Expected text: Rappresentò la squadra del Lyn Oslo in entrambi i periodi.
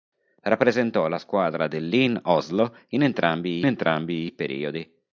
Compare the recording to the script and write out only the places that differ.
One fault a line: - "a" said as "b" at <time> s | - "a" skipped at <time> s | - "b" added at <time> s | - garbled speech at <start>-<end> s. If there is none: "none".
- "entrambi" added at 3.7 s